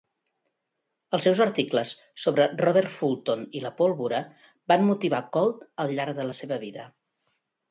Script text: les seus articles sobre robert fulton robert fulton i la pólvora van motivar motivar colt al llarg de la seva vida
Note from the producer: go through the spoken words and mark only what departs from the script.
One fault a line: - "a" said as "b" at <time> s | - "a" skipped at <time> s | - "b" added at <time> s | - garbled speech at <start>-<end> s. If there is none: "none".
- "les" said as "els" at 1.2 s
- "robert fulton" skipped at 3.4 s
- "motivar" skipped at 5.2 s